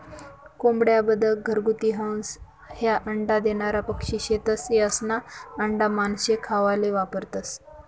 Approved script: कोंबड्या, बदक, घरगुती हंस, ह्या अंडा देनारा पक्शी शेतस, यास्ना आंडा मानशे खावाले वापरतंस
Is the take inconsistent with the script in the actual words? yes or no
no